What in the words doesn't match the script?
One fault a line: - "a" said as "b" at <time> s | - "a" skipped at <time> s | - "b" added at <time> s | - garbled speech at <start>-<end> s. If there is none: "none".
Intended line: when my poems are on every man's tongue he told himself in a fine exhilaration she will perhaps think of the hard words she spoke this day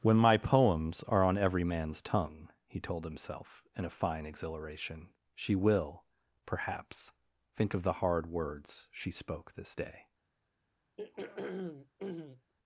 none